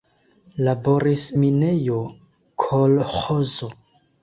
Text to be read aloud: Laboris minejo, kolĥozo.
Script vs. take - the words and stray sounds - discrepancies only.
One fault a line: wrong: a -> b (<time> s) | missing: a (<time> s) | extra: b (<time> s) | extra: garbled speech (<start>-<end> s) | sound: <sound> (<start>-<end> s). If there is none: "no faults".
no faults